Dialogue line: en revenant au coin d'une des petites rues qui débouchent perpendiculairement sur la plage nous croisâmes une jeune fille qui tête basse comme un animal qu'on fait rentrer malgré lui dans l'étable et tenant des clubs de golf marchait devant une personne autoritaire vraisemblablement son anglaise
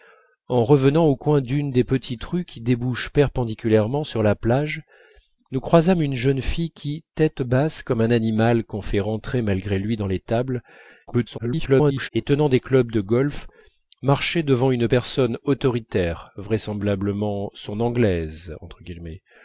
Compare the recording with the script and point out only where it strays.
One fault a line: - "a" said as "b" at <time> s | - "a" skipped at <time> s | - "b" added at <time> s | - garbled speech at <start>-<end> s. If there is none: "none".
- garbled speech at 11.1-12.1 s